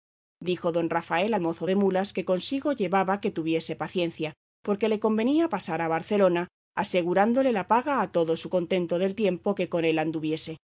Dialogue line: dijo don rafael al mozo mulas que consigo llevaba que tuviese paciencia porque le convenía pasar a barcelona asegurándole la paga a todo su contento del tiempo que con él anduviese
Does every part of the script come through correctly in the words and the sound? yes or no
no